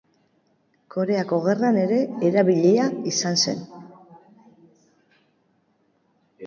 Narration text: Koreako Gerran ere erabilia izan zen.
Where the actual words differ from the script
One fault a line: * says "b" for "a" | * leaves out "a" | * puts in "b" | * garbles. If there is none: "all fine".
all fine